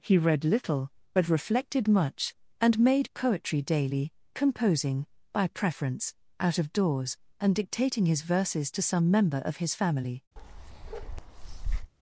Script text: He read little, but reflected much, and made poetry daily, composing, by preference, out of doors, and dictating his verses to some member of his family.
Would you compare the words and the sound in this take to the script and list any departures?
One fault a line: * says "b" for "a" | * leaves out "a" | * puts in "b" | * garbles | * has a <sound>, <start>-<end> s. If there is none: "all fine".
* has a bark, 10.4-11.9 s